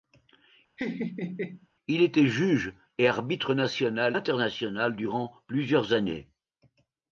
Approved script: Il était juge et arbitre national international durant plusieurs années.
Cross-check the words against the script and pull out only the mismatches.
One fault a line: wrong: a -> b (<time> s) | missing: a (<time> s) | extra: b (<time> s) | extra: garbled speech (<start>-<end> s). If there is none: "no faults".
no faults